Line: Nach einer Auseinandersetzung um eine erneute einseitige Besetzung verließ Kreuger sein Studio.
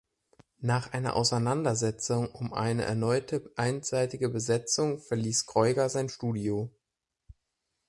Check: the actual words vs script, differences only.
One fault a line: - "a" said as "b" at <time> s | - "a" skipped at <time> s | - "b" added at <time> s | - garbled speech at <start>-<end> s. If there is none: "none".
none